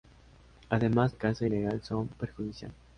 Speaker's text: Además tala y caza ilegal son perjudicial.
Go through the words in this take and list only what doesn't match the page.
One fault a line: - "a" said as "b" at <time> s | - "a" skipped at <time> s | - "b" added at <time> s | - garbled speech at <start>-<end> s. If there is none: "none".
- "tala" skipped at 1.1 s